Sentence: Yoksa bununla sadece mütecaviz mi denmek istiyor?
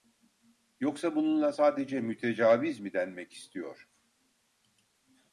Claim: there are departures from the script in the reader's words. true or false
false